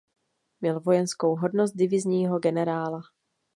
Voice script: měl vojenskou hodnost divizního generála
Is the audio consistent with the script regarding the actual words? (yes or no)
yes